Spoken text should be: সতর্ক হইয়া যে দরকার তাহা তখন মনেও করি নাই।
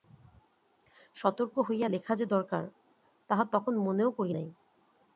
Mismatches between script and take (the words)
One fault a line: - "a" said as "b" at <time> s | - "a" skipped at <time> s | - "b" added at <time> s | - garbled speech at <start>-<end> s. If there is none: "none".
- "লেখা" added at 1.9 s